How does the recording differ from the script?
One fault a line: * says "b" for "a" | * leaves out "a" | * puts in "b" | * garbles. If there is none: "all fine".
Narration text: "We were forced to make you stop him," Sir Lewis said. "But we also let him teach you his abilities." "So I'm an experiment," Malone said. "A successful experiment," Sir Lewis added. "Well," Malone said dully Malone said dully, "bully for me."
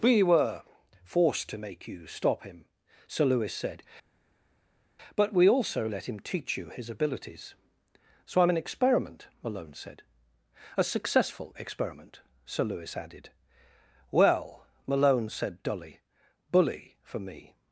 * leaves out "Malone said dully"